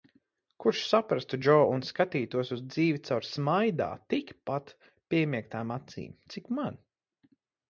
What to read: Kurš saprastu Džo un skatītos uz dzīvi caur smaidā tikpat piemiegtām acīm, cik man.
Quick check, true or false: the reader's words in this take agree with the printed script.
true